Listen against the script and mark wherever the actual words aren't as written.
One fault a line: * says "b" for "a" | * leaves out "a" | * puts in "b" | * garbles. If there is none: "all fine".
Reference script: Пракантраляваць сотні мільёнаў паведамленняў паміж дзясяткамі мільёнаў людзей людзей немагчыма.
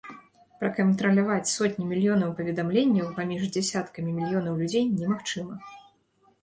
* leaves out "людзей"